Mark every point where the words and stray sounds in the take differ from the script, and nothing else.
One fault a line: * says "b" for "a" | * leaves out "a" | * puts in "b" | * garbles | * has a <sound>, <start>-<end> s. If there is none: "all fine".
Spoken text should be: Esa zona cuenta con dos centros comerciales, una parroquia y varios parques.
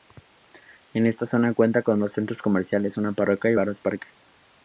* says "Esta" for "Esa"